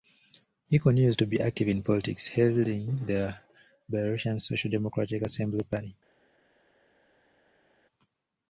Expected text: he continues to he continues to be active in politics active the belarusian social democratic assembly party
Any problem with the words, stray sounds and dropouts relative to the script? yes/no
yes